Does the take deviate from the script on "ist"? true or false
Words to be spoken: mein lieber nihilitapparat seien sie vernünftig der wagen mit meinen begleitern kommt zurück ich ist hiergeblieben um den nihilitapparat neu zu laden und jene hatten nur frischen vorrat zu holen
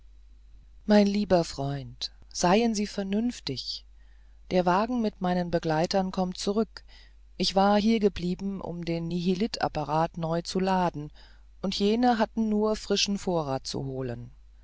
true